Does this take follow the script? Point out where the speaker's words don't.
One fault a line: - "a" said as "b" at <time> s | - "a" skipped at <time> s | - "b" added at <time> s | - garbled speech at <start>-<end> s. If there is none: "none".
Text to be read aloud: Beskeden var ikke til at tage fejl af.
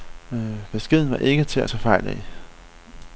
none